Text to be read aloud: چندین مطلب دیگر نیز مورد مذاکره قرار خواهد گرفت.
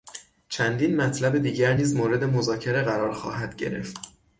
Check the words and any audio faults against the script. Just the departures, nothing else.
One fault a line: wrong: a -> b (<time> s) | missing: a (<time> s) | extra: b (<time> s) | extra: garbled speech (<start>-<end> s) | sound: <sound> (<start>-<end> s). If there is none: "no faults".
no faults